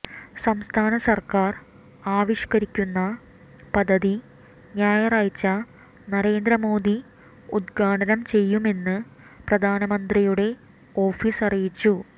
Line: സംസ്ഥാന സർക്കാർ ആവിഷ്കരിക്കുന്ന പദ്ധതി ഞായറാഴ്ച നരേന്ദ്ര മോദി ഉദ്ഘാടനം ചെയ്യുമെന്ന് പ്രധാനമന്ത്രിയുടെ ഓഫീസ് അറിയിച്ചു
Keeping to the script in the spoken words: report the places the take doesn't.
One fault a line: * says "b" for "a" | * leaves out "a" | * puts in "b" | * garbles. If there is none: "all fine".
all fine